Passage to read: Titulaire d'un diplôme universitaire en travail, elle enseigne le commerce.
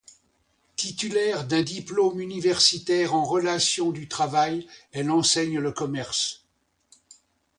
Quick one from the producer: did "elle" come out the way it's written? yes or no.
yes